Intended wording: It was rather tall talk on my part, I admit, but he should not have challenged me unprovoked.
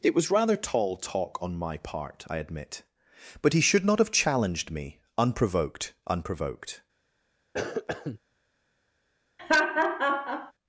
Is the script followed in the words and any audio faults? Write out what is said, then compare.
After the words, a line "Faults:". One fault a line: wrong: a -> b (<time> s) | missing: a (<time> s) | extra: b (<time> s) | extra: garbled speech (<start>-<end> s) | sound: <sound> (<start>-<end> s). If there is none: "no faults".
It was rather tall talk on my part, I admit, but he should not have challenged me unprovoked unprovoked.
Faults:
extra: unprovoked (6.1 s)
sound: cough (7.5-8.2 s)
sound: laugh (9.4-10.5 s)